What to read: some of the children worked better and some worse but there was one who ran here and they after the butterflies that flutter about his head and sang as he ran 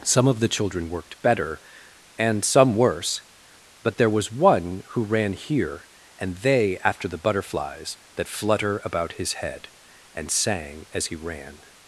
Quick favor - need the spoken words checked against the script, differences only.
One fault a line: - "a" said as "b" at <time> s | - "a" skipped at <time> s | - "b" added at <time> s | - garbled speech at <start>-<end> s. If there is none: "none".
none